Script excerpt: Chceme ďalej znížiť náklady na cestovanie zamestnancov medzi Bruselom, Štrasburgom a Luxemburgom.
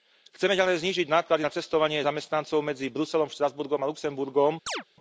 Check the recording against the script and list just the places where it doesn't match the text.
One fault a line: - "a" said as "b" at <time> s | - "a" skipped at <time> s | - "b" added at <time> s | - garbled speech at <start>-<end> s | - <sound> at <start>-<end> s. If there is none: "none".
- chirp at 4.7-4.8 s